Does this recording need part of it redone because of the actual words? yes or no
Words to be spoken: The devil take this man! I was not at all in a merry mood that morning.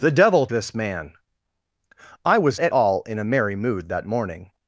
yes